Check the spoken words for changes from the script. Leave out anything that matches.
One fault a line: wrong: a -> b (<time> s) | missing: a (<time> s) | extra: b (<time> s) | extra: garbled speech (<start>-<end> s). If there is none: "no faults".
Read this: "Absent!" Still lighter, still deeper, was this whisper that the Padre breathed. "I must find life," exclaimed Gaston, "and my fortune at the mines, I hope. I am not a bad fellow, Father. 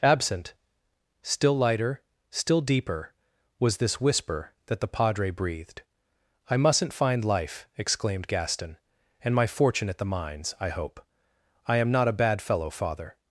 wrong: must -> mustn't (6.6 s)